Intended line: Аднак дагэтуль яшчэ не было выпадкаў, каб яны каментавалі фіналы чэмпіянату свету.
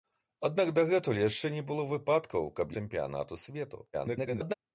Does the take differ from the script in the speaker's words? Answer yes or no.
yes